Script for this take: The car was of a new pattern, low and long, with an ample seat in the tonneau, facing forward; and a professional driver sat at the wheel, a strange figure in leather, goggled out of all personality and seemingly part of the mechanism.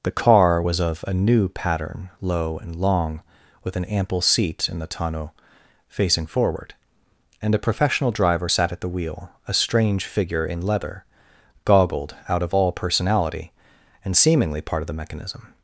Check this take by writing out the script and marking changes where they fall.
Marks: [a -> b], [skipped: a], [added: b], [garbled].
The car was of a new pattern, low and long, with an ample seat in the tonneau, facing forward; and a professional driver sat at the wheel, a strange figure in leather, goggled out of all personality and seemingly part of the mechanism.